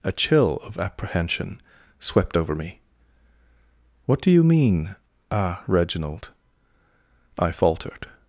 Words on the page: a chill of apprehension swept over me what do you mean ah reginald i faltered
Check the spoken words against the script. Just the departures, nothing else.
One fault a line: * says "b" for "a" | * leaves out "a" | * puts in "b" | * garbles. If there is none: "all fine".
all fine